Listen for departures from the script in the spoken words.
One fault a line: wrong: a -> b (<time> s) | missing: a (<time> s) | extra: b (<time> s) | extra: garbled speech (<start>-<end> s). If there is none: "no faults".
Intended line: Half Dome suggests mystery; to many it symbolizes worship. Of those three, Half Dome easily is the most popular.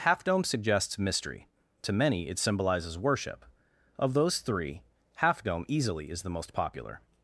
no faults